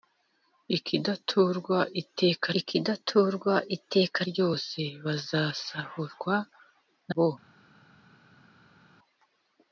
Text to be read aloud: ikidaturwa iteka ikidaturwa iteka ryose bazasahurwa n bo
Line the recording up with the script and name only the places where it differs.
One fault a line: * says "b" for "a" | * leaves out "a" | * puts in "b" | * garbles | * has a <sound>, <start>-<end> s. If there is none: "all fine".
all fine